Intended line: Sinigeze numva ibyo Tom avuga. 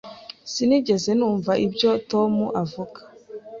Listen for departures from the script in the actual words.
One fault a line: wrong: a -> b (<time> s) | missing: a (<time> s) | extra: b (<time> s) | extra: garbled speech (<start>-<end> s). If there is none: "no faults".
no faults